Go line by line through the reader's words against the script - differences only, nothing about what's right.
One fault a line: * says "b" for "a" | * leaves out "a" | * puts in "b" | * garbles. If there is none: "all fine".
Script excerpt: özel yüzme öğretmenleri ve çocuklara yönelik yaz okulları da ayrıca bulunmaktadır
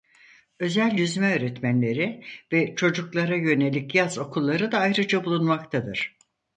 all fine